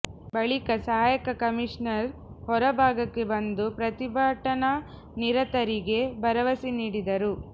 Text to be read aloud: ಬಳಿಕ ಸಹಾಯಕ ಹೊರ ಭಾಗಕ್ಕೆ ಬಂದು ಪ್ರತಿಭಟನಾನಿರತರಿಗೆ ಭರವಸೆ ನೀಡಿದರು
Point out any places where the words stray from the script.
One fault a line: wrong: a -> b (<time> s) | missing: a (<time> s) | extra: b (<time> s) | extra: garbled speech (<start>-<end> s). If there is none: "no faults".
extra: ಕಮಿಷನರ್ (1.4 s)